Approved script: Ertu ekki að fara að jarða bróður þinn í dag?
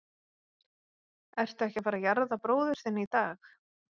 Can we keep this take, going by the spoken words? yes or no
yes